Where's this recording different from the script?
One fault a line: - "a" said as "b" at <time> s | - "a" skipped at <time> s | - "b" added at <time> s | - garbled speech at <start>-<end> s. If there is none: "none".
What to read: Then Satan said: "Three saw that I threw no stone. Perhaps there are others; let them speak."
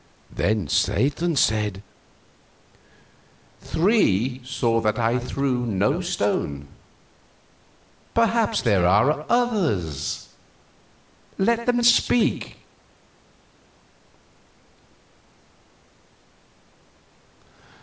none